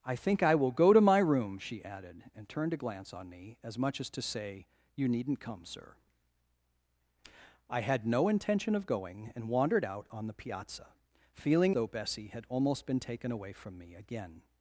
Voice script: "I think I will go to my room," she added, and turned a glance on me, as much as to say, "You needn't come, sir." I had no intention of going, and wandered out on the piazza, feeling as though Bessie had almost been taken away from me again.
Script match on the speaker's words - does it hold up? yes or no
no